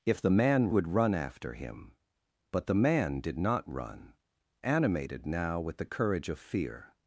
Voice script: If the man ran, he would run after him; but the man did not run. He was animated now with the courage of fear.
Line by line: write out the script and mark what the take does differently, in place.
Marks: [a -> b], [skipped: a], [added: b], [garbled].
If the man [skipped: ran, he] would run after him; but the man did not run. [skipped: He was] animated now with the courage of fear.